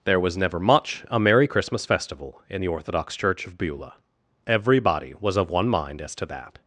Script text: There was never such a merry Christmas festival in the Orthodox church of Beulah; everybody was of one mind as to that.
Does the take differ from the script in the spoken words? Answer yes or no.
yes